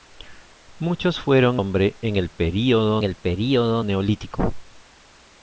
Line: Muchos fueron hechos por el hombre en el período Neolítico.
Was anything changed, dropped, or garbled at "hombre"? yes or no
yes